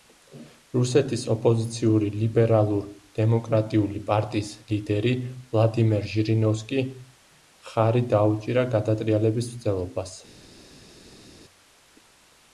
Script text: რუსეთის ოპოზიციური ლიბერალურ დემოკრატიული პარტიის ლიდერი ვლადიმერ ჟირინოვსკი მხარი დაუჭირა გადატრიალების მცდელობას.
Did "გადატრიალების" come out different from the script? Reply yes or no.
no